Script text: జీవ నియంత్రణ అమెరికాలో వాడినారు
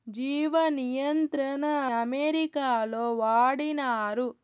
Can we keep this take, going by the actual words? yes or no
yes